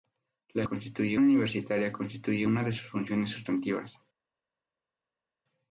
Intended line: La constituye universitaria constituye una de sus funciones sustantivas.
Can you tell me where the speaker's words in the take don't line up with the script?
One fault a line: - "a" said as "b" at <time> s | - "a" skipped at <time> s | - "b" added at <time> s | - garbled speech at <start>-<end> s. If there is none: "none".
none